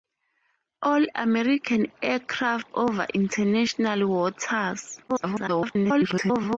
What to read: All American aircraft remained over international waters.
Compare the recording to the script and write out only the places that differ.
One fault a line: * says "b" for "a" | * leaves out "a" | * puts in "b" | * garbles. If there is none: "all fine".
* leaves out "remained"
* garbles